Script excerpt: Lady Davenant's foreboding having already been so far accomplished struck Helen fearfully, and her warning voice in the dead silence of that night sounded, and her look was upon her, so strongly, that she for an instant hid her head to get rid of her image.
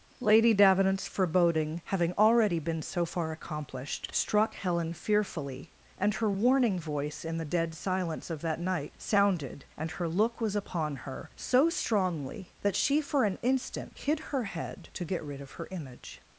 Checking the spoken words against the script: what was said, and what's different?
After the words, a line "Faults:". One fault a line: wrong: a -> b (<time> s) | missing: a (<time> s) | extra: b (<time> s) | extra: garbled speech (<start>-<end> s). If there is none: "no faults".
Lady Davenant's foreboding having already been so far accomplished struck Helen fearfully, and her warning voice in the dead silence of that night sounded, and her look was upon her, so strongly, that she for an instant hid her head to get rid of her image.
Faults:
no faults